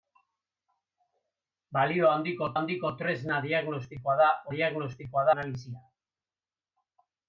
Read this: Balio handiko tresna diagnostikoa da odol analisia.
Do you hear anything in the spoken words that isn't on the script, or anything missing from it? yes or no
yes